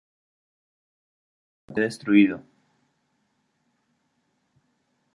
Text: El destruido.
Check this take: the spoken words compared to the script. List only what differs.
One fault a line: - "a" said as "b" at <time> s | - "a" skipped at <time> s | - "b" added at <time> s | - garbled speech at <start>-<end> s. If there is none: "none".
none